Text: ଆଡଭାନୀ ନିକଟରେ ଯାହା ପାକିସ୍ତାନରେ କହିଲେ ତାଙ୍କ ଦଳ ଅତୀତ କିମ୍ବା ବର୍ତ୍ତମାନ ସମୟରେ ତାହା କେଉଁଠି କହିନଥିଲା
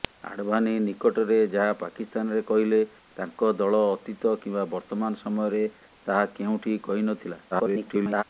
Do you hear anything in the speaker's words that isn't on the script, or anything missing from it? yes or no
yes